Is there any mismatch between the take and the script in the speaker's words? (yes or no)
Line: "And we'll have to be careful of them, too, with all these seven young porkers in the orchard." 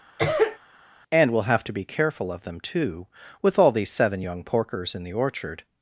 no